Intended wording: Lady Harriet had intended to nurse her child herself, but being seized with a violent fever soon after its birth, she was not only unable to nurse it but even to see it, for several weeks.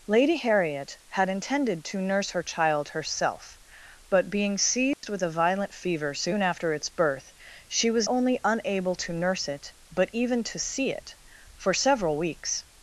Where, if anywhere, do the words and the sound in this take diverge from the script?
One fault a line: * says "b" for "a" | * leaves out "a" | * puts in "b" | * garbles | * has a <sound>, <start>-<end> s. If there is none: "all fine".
* has a dropout, 4.9-5.0 s
* leaves out "not"